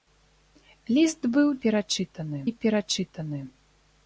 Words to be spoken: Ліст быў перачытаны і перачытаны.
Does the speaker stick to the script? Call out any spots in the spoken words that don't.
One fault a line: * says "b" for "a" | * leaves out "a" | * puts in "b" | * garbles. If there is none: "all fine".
all fine